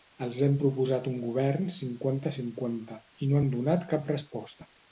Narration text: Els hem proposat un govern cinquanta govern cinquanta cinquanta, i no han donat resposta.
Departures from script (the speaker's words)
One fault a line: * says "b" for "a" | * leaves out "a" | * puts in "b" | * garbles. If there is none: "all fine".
* leaves out "govern"
* leaves out "cinquanta"
* puts in "cap"